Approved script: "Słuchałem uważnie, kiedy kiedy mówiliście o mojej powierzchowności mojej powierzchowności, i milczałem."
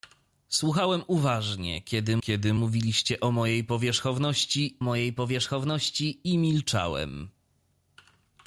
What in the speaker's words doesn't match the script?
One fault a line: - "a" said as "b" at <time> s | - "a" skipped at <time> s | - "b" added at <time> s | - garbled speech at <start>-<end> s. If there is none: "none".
none